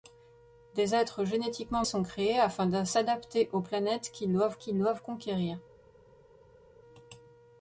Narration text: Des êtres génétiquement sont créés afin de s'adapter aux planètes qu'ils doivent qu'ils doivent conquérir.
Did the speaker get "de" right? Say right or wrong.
right